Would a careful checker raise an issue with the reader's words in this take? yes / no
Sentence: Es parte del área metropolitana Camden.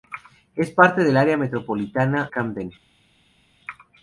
no